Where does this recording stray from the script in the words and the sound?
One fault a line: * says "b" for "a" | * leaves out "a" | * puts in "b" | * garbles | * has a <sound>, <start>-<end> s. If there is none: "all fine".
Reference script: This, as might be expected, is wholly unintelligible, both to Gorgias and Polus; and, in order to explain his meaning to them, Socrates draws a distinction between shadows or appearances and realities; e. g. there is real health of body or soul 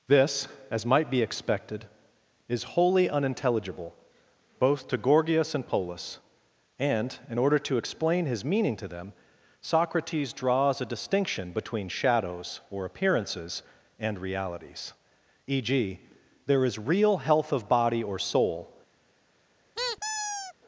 * has a squeak, 19.8-20.5 s